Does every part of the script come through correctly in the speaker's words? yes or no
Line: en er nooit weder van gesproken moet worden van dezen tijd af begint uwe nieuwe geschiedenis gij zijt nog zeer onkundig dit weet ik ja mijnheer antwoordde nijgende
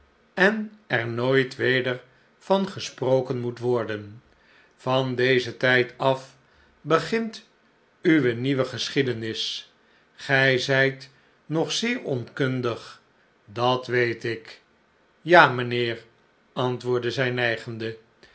no